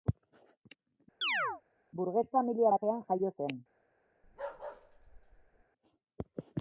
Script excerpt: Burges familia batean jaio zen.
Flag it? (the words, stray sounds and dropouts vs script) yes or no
yes